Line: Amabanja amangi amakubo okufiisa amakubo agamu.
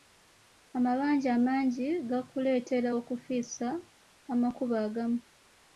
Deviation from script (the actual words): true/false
true